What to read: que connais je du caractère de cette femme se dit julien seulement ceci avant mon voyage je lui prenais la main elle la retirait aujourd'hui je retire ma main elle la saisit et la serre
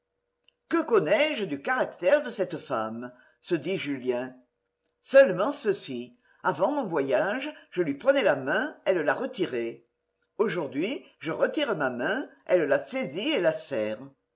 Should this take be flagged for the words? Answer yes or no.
no